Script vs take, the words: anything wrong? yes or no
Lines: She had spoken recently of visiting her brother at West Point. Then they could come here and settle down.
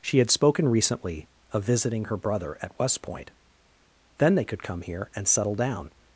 no